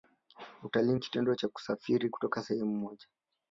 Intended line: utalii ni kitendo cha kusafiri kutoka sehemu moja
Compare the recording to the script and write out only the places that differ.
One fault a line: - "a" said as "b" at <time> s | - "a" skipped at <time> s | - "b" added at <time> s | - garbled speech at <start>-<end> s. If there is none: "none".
none